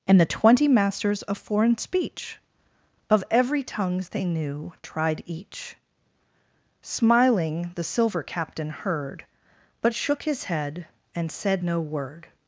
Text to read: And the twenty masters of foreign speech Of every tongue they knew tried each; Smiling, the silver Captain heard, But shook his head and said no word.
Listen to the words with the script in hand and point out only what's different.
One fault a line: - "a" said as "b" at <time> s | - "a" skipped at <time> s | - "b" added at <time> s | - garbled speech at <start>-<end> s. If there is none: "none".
- "tongue" said as "tongues" at 3.6 s